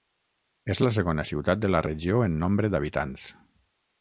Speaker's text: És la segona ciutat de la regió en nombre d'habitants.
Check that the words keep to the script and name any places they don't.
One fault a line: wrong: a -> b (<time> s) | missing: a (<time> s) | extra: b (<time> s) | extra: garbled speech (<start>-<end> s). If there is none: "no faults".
no faults